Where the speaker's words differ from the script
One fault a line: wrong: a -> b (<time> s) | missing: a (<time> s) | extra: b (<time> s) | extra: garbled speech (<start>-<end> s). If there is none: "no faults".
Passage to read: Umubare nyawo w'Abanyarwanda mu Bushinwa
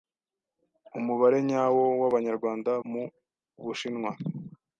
no faults